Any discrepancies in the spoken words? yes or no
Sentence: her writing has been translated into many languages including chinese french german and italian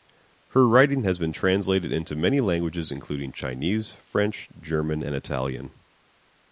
no